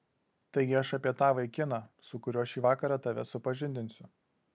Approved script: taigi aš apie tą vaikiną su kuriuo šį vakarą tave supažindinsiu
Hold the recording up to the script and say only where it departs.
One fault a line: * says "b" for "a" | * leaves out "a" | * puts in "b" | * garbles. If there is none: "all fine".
all fine